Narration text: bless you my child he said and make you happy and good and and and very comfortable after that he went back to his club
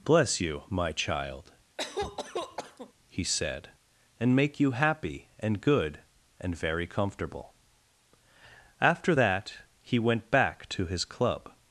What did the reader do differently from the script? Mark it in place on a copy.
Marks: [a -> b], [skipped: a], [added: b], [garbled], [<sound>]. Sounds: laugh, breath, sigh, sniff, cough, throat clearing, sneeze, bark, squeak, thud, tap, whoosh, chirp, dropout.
bless you my child [cough] he said and make you happy and good and [skipped: and and] very comfortable after that he went back to his club